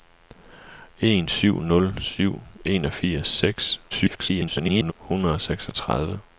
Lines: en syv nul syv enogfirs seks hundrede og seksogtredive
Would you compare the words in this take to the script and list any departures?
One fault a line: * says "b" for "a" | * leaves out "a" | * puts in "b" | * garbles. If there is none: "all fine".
* garbles